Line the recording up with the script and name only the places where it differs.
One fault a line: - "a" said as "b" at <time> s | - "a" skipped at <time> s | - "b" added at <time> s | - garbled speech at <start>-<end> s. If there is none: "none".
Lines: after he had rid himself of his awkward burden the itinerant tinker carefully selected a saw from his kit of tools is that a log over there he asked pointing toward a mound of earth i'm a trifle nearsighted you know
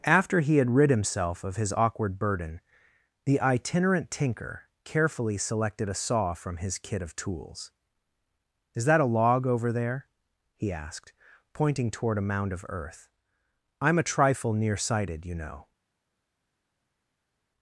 none